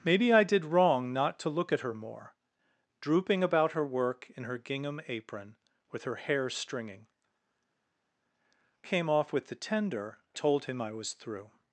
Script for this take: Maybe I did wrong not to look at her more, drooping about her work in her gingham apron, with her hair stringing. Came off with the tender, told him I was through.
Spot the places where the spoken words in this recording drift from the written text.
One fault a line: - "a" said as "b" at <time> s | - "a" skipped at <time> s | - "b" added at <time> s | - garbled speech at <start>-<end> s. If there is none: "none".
none